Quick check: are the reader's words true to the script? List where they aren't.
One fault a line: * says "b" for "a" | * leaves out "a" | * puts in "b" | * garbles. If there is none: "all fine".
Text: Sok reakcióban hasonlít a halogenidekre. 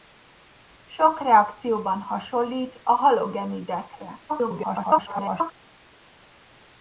* garbles